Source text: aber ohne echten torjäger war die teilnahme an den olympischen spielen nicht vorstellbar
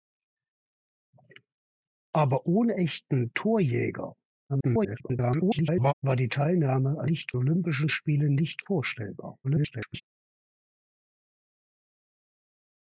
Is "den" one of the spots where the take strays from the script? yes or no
yes